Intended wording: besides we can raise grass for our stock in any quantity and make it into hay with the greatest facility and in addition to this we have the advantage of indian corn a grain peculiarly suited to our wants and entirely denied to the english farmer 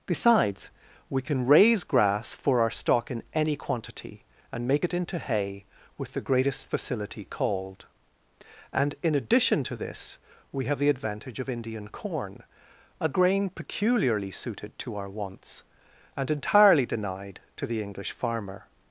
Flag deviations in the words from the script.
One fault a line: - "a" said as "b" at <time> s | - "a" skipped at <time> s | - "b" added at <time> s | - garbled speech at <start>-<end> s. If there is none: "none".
- "called" added at 7.2 s